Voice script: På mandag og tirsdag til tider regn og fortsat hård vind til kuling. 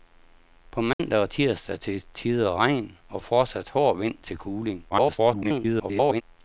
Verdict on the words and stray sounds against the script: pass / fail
fail